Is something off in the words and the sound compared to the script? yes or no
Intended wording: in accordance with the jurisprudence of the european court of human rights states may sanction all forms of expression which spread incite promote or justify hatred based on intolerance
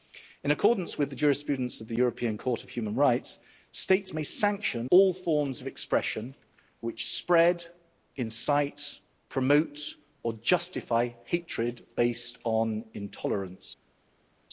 no